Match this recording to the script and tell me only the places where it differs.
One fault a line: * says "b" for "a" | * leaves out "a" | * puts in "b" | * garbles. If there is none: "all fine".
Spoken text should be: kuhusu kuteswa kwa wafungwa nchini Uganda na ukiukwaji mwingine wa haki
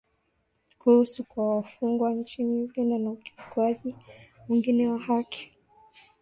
* leaves out "kuteswa"